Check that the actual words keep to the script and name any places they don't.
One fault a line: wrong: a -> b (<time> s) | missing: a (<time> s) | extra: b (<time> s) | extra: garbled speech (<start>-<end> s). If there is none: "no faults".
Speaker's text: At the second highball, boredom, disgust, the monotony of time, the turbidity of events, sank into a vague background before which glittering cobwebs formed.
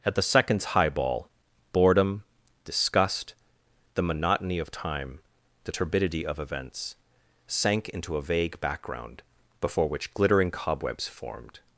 wrong: second -> seconds (0.2 s)